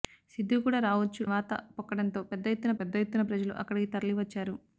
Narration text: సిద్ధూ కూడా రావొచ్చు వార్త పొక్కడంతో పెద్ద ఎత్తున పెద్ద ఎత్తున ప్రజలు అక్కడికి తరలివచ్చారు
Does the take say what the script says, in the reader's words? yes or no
yes